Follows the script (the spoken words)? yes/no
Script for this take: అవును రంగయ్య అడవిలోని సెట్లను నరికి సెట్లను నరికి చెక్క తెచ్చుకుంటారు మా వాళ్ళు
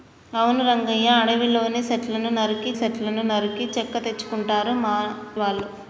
yes